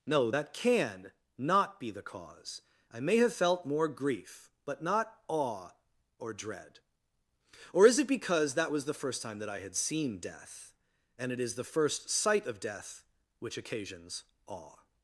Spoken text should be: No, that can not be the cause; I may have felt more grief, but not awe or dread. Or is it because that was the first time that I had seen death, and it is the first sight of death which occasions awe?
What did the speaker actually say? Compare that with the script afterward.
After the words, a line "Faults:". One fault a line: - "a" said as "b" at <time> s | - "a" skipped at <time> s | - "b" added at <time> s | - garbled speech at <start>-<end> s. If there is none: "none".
No, that can not be the cause; I may have felt more grief, but not awe or dread. Or is it because that was the first time that I had seen death, and it is the first sight of death which occasions awe?
Faults:
none